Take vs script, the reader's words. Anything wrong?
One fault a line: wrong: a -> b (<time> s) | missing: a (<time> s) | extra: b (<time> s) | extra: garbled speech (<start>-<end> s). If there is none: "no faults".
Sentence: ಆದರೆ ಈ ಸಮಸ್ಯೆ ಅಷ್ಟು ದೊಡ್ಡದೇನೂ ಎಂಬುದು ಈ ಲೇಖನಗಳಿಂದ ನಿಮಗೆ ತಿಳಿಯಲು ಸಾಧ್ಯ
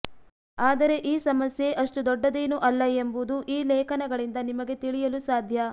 extra: ಅಲ್ಲ (2.6 s)